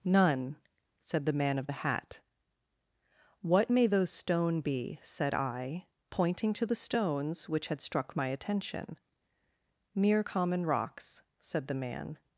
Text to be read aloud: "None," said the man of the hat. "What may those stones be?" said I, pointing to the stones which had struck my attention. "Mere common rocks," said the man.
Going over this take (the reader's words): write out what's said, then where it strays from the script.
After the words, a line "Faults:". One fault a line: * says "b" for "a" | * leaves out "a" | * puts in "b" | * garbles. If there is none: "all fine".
"None," said the man of the hat. "What may those stone be?" said I, pointing to the stones which had struck my attention. "Mere common rocks," said the man.
Faults:
* says "stone" for "stones"